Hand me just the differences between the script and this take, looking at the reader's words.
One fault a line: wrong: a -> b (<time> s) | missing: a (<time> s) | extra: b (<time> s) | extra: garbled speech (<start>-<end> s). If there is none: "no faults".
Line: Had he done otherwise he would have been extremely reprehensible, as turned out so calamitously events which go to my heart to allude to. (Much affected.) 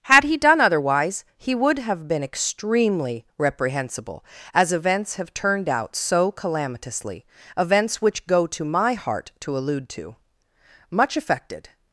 extra: events have (4.7 s)